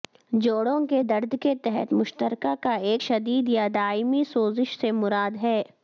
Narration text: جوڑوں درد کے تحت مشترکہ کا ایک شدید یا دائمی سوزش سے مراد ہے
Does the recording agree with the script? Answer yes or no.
no